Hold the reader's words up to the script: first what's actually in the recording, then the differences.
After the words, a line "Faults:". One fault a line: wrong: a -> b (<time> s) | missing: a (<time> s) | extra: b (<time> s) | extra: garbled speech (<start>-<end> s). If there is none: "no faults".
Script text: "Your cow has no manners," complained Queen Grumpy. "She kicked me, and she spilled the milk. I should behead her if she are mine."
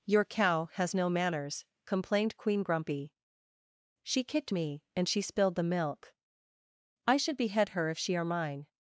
"Your cow has no manners," complained Queen Grumpy. "She kicked me, and she spilled the milk. I should behead her if she are mine."
Faults:
no faults